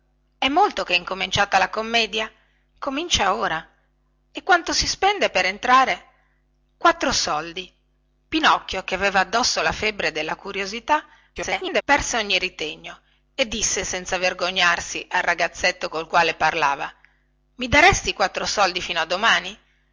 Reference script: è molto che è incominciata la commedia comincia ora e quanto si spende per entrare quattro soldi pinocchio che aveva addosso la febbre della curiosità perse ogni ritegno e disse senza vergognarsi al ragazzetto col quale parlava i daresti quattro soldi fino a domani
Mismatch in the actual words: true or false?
true